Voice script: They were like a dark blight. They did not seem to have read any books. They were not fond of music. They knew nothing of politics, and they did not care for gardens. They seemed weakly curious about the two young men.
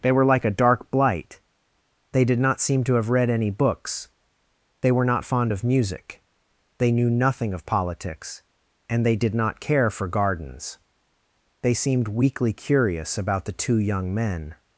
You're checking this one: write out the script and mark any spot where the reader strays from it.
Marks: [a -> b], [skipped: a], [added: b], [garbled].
They were like a dark blight. They did not seem to have read any books. They were not fond of music. They knew nothing of politics, and they did not care for gardens. They seemed weakly curious about the two young men.